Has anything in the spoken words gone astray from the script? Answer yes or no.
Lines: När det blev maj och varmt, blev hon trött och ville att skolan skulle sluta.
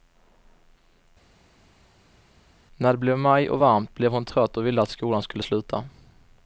no